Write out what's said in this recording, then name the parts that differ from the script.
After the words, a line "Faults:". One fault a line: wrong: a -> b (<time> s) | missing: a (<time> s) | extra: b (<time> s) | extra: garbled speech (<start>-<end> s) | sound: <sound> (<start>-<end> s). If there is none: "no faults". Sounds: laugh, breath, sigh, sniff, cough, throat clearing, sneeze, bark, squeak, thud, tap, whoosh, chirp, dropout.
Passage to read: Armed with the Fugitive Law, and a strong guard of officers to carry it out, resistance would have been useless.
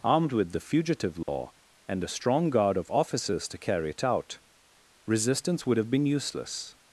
Armed with the Fugitive Law, and a strong guard of officers to carry it out, resistance would have been useless.
Faults:
sound: dropout (1.2-1.3 s)